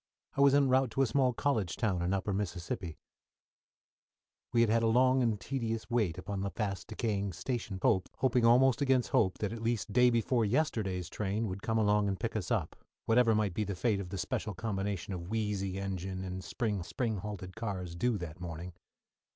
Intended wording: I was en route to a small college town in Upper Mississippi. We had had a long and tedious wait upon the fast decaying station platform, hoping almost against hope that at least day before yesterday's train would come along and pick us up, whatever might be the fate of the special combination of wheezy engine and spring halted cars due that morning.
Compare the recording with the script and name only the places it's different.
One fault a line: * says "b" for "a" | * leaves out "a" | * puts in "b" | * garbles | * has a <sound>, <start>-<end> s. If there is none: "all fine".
* says "hope" for "platform"
* puts in "spring"